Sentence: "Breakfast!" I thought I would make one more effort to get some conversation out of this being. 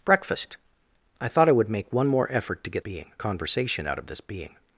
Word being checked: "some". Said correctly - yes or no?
no